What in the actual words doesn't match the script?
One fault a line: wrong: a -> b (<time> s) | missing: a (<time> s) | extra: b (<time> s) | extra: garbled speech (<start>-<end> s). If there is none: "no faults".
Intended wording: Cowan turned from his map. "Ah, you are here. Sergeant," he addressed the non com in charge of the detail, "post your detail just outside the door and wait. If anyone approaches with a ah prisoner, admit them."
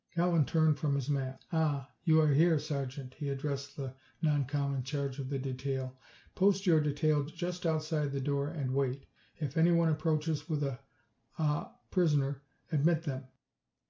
no faults